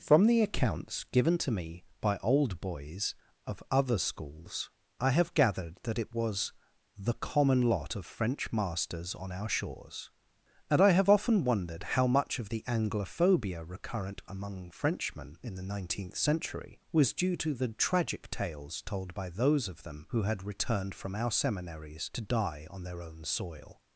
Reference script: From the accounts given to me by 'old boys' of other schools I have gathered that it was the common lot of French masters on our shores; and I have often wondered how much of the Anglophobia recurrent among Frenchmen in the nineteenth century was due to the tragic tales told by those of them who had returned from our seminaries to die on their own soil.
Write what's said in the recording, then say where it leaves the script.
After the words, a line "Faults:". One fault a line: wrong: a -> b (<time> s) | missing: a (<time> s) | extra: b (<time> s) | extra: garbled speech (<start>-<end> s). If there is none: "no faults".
From the accounts given to me by 'old boys' of other schools I have gathered that it was the common lot of French masters on our shores; and I have often wondered how much of the Anglophobia recurrent among Frenchmen in the nineteenth century was due to the tragic tales told by those of them who had returned from our seminaries to die on their own soil.
Faults:
no faults